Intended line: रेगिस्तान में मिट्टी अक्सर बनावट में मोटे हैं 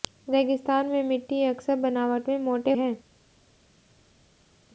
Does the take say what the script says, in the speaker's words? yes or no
yes